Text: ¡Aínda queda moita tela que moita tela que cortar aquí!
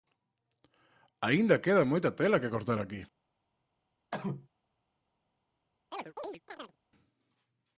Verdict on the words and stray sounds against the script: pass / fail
fail